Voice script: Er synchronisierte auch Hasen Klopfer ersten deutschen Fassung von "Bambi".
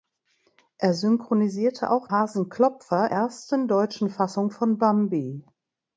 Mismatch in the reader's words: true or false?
false